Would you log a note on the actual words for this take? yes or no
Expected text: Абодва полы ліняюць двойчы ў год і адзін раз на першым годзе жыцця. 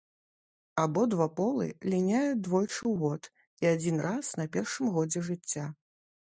no